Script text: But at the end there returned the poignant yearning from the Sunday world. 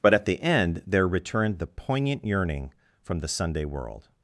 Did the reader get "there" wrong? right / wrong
right